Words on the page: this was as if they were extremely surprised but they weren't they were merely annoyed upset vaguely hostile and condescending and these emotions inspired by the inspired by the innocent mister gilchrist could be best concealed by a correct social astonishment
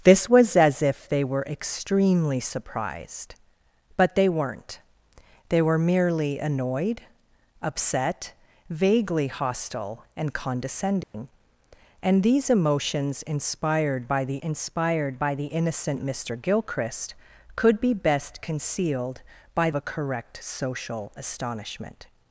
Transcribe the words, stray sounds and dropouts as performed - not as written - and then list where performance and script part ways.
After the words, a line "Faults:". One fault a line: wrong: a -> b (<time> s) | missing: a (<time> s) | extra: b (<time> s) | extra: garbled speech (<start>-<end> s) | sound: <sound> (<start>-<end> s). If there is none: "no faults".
this was as if they were extremely surprised but they weren't they were merely annoyed upset vaguely hostile and condescending and these emotions inspired by the inspired by the innocent mister gilchrist could be best concealed by a correct social astonishment
Faults:
sound: dropout (11.0-11.1 s)